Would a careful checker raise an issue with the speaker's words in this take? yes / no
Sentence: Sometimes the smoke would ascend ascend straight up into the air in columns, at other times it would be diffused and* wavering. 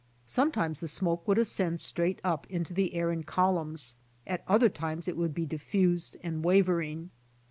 yes